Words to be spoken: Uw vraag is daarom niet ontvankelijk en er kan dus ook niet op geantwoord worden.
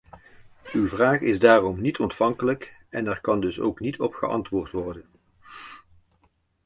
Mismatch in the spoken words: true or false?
false